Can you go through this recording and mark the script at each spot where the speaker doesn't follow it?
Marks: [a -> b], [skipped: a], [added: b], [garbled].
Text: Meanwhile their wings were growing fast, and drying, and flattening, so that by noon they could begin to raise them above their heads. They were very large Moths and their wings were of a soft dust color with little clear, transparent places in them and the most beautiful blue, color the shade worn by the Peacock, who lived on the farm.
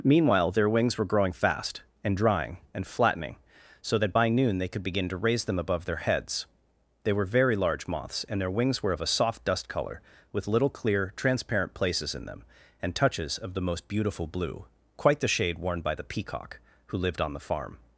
Meanwhile their wings were growing fast, and drying, and flattening, so that by noon they could begin to raise them above their heads. They were very large Moths and their wings were of a soft dust color with little clear, transparent places in them and [added: touches of] the most beautiful blue, [color -> quite] the shade worn by the Peacock, who lived on the farm.